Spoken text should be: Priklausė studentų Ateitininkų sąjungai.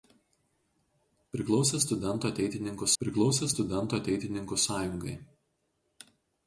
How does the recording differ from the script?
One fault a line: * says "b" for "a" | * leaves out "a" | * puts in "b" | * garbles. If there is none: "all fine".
* puts in "priklausė studentų Ateitininkų"